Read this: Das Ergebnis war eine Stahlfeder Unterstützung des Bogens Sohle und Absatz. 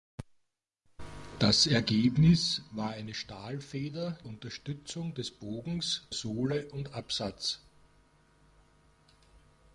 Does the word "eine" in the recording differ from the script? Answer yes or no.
no